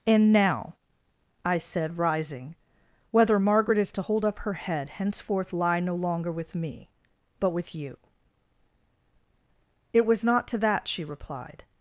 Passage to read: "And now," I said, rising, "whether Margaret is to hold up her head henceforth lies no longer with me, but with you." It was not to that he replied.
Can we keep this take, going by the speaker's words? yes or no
no